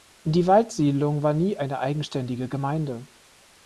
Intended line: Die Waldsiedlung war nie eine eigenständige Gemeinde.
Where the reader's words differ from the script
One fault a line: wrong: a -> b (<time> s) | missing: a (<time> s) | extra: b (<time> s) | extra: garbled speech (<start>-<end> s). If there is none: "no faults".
no faults